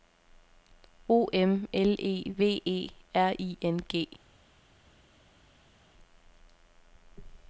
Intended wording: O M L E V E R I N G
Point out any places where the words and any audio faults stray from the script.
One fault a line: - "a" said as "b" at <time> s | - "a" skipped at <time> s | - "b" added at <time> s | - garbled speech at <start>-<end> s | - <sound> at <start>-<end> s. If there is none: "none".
none